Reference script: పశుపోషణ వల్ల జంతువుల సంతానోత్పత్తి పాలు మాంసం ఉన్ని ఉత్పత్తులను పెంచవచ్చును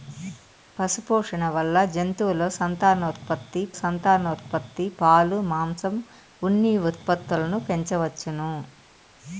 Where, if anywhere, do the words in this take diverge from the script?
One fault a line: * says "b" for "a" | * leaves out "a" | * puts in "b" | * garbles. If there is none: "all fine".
* puts in "సంతానోత్పత్తి"